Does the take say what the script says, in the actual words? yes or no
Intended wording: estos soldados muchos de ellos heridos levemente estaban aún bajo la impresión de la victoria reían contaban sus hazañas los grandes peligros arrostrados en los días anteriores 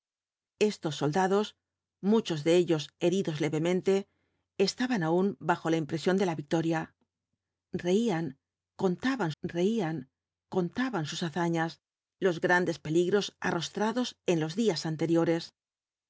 no